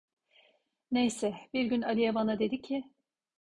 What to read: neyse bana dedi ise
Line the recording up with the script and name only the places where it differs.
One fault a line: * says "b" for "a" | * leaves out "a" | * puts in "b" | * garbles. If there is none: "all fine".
* puts in "bir gün aliye"
* says "ki" for "ise"